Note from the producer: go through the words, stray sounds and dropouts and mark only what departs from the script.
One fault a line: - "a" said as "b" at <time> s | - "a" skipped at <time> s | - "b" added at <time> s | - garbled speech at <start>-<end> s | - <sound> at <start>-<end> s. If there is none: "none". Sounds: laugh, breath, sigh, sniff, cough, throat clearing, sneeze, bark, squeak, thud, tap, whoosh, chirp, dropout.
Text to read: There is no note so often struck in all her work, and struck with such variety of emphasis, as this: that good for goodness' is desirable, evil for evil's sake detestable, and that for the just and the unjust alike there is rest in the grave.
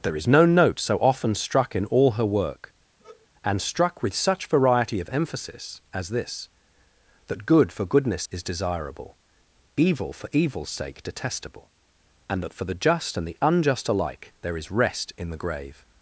- sigh at 3.0-3.3 s